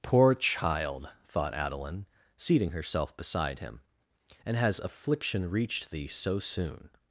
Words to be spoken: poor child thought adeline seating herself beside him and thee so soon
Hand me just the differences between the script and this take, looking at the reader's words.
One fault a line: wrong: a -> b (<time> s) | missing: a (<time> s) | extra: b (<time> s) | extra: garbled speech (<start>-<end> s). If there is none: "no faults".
extra: has affliction reached (4.5 s)